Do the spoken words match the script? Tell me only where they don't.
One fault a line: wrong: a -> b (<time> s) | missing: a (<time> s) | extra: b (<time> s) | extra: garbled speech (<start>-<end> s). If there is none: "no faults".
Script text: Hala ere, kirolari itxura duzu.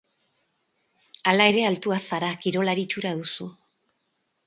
extra: altua zara (1.7 s)